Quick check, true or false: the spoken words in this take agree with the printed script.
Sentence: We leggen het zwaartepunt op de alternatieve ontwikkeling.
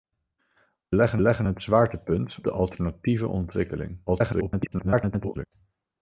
false